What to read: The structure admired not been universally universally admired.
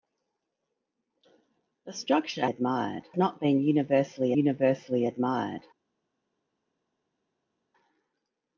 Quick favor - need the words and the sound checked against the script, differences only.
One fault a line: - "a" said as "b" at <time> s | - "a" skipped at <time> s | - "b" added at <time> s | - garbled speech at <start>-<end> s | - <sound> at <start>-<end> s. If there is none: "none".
none